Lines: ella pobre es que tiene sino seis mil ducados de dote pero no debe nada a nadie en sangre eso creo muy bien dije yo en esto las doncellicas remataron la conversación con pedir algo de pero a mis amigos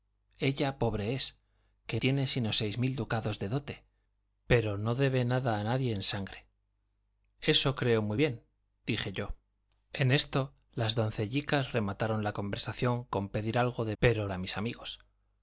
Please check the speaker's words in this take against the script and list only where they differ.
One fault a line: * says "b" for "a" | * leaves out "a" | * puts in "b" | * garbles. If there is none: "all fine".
all fine